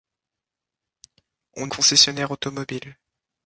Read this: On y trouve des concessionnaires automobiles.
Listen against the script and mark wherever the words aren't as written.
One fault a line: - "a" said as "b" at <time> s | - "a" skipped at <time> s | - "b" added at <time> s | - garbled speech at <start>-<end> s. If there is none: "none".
- "y trouve des" skipped at 1.7 s